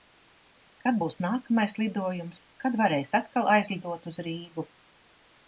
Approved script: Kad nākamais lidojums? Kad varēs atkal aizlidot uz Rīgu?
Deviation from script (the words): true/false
true